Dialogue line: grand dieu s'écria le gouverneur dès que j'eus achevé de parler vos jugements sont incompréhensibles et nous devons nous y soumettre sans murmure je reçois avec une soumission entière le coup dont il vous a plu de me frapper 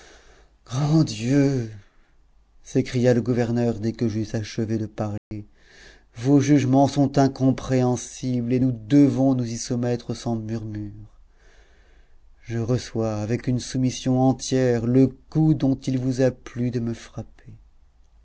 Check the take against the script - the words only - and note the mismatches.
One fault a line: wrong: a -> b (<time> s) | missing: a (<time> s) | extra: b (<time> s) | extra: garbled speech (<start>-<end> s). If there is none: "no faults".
no faults